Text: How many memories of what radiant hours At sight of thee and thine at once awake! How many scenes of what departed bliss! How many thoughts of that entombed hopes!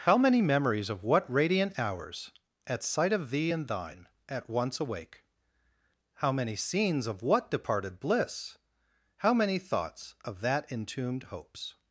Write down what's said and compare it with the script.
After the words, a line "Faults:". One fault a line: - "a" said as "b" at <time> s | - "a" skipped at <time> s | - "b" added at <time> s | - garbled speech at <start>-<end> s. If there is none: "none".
How many memories of what radiant hours At sight of thee and thine at once awake! How many scenes of what departed bliss! How many thoughts of that entombed hopes!
Faults:
none